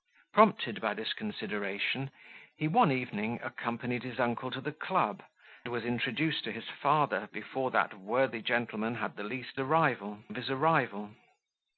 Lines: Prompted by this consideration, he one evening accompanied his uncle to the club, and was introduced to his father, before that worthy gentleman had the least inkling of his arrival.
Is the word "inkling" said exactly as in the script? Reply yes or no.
no